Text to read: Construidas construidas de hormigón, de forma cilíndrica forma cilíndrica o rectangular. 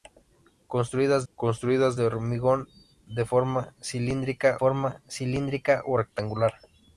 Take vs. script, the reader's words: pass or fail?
pass